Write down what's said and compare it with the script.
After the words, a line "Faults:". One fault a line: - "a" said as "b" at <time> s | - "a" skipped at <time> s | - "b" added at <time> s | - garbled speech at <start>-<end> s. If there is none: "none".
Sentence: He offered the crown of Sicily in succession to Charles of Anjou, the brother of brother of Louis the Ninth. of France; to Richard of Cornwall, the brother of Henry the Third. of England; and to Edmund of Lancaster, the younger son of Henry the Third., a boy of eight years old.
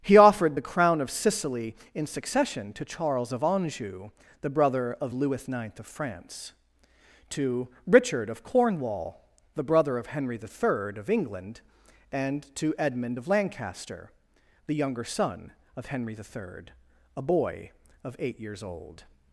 He offered the crown of Sicily in succession to Charles of Anjou, the brother of Louis the Ninth. of France; to Richard of Cornwall, the brother of Henry the Third. of England; and to Edmund of Lancaster, the younger son of Henry the Third., a boy of eight years old.
Faults:
- "brother of" skipped at 5.1 s